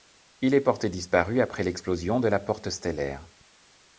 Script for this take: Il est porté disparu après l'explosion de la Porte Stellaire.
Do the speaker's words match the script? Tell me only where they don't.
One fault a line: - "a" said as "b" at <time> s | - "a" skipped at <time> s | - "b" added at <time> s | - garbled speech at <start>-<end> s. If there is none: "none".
none